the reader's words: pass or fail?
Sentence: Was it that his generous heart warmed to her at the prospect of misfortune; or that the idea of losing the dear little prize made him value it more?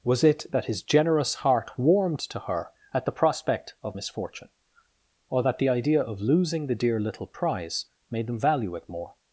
fail